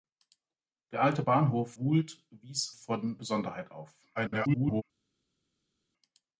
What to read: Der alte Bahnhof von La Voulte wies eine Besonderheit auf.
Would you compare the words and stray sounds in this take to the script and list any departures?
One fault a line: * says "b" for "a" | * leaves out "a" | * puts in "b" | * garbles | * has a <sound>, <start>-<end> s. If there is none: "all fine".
* leaves out "von La"
* says "von" for "eine"
* garbles